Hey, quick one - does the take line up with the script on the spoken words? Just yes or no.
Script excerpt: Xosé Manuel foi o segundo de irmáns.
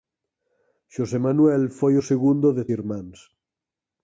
yes